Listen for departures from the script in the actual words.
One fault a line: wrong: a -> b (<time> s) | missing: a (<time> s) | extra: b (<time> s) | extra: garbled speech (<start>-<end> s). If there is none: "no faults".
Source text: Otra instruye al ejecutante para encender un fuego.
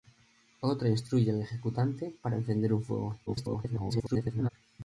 extra: garbled speech (3.3-4.5 s)